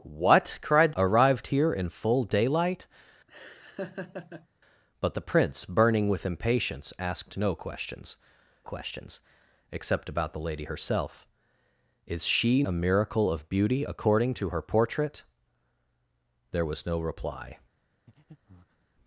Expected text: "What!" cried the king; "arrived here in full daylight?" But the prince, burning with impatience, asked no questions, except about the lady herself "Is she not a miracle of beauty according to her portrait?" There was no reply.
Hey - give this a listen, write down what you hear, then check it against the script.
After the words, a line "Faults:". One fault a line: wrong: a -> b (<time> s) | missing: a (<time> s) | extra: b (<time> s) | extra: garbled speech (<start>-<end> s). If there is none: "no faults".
"What!" cried; "arrived here in full daylight?" But the prince, burning with impatience, asked no questions questions, except about the lady herself "Is she a miracle of beauty according to her portrait?" There was no reply.
Faults:
missing: the king (0.9 s)
extra: questions (8.6 s)
missing: not (12.6 s)